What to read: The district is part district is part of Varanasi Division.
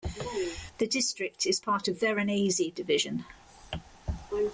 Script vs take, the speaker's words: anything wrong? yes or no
yes